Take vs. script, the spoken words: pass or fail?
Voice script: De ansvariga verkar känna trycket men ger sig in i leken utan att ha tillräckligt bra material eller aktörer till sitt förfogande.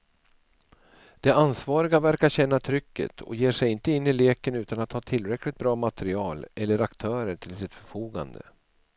fail